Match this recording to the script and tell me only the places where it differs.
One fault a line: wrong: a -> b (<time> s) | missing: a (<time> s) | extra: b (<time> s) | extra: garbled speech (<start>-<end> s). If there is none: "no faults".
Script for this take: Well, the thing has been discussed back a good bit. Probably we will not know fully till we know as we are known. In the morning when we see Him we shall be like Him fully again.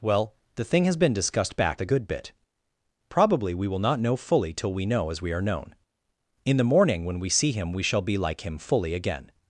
no faults